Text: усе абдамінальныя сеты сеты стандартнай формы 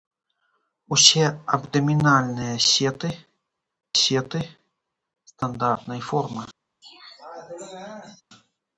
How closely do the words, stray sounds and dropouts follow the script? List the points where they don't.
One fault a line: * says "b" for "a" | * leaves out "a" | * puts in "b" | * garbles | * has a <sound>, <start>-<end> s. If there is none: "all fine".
* has a throat clearing, 6.8-8.2 s